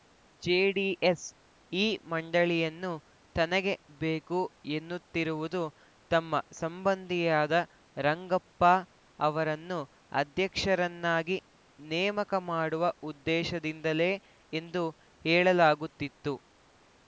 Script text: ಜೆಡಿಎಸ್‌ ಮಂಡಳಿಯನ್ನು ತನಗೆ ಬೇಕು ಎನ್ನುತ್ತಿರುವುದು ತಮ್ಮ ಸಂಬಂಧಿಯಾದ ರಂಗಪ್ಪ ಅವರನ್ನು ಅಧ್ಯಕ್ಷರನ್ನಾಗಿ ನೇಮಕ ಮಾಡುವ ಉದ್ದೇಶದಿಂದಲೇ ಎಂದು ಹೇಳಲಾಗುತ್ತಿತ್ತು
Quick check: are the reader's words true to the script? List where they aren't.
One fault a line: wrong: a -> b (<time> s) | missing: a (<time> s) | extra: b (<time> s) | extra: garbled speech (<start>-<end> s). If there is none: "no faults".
extra: ಈ (1.7 s)